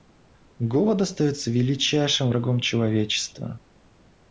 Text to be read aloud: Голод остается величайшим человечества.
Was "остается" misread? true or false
false